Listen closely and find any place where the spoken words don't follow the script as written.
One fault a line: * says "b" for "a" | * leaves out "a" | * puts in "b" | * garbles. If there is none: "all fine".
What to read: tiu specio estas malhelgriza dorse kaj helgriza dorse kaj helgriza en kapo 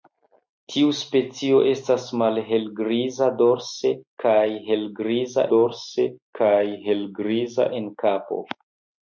all fine